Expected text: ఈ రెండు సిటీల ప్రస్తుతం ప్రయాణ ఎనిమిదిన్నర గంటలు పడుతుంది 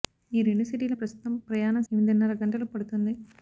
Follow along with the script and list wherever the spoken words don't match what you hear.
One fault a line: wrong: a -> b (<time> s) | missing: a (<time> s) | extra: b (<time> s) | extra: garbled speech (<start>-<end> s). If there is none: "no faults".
no faults